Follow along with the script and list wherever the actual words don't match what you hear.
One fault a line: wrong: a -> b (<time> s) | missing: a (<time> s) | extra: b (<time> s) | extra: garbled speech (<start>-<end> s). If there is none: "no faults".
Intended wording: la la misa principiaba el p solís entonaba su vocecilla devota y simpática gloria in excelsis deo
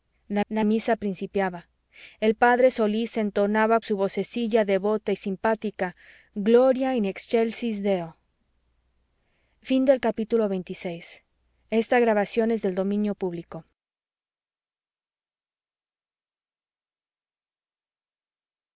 no faults